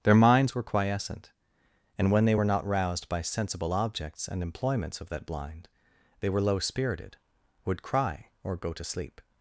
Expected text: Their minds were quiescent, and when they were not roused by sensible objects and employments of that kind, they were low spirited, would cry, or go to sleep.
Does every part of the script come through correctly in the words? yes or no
no